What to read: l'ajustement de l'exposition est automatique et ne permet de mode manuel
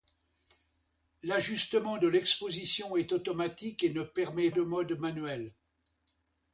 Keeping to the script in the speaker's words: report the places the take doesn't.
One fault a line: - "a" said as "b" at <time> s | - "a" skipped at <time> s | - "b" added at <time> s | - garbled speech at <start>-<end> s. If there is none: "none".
none